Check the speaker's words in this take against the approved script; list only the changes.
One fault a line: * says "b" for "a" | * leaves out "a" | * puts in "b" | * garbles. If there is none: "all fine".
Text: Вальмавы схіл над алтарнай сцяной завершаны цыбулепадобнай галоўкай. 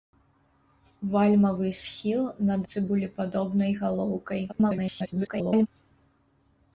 * leaves out "алтарнай сцяной завершаны"
* garbles